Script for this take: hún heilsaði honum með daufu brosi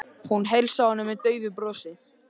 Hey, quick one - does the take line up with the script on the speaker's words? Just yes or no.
yes